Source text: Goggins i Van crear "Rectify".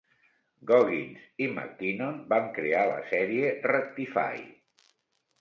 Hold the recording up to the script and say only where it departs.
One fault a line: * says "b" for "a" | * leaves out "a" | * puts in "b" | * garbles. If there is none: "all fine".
* puts in "McKinnon"
* puts in "la sèrie"